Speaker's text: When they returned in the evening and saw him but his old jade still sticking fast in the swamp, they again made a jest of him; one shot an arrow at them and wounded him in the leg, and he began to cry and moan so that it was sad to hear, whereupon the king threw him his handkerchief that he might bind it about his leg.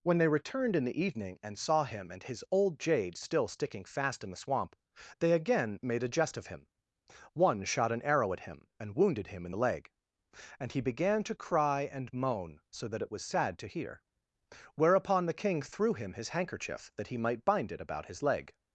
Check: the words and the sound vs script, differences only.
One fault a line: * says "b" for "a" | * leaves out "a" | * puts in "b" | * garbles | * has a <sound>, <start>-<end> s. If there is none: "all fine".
* says "and" for "but"
* says "him" for "them"